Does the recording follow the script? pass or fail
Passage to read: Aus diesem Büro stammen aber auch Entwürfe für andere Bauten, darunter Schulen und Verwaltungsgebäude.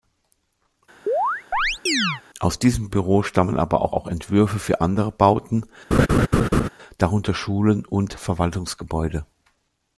fail